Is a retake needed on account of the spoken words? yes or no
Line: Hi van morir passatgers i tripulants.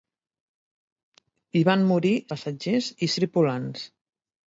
no